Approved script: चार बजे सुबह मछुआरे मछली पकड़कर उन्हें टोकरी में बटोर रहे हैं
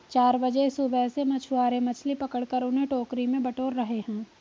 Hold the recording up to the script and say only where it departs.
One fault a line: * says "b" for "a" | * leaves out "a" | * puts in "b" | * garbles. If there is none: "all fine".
* puts in "से"